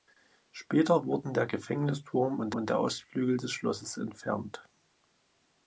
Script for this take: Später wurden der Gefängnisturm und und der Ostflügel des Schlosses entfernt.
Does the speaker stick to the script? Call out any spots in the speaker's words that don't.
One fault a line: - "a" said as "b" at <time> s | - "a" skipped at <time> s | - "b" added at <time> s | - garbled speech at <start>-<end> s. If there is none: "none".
none